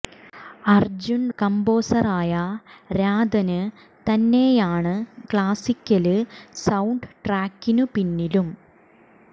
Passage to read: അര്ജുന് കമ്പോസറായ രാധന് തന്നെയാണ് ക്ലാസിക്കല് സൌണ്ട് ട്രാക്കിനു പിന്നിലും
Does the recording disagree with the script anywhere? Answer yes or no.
no